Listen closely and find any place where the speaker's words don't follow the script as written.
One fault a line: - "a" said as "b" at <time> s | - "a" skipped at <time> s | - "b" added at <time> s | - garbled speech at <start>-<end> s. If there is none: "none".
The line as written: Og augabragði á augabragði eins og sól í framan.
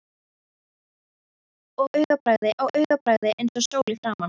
none